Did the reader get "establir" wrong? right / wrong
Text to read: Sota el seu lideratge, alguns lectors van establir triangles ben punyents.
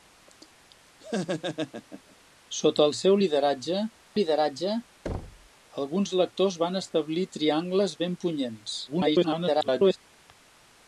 right